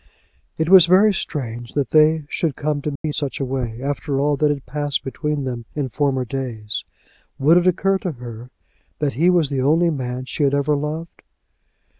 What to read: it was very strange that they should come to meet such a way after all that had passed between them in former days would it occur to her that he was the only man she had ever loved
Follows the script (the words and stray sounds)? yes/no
no